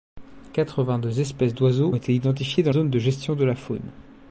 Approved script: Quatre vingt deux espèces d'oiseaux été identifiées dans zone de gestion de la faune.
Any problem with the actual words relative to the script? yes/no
no